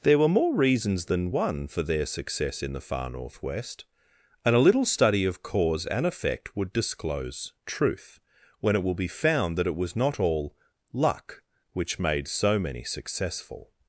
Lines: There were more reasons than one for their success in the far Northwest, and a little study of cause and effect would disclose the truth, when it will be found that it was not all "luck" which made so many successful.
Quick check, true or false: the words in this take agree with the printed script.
false